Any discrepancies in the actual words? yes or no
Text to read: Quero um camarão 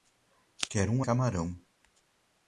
no